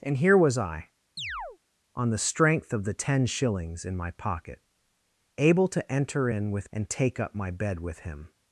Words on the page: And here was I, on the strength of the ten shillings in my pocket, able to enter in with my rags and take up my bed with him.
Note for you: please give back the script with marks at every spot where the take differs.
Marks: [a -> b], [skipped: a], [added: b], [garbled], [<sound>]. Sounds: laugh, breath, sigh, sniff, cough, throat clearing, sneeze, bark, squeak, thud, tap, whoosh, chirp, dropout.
And here was I, [chirp] on the strength of the ten shillings in my pocket, able to enter in with [skipped: my rags] and take up my bed with him.